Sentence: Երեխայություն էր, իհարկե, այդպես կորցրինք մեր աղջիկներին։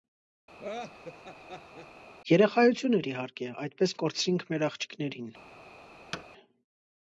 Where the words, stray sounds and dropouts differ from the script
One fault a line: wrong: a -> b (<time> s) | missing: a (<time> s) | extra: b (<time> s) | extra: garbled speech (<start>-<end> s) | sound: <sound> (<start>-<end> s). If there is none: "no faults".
sound: laugh (0.6-1.9 s)
sound: thud (6.1-6.3 s)